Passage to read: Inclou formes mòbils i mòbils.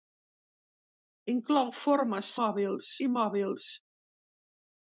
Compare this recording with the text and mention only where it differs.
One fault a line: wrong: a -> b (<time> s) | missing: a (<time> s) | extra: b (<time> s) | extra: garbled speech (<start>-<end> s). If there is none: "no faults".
no faults